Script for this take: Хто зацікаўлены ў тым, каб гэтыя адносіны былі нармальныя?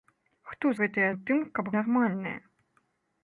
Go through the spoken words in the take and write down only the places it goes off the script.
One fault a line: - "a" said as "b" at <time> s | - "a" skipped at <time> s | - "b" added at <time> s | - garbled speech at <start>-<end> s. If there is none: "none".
- "зацікаўлены" said as "гэтыя" at 0.8 s
- "гэтыя адносіны былі" skipped at 1.7 s